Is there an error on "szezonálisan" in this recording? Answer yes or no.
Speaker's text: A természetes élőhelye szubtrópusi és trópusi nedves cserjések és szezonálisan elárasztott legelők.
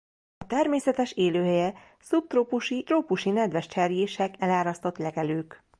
yes